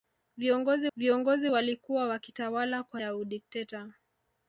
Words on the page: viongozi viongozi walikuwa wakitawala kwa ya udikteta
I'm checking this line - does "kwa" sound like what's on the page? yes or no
yes